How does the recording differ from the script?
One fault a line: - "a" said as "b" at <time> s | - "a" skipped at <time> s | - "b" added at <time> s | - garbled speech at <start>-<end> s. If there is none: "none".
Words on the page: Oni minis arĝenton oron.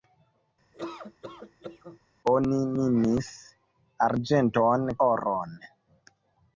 none